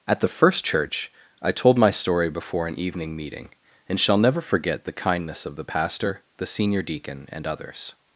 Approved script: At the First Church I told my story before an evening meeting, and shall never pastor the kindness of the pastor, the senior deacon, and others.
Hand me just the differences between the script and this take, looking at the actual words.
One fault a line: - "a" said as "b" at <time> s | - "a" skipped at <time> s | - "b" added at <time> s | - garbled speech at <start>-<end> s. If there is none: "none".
- "pastor" said as "forget" at 4.4 s